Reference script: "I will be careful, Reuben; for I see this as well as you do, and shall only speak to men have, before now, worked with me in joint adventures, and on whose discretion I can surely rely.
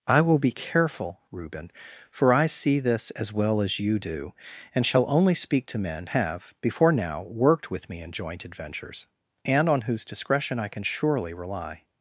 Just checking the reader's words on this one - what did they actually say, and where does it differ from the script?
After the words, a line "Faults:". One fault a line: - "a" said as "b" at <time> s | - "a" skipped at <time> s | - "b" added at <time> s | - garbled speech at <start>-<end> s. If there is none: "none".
"I will be careful, Reuben; for I see this as well as you do, and shall only speak to men have, before now, worked with me in joint adventures, and on whose discretion I can surely rely.
Faults:
none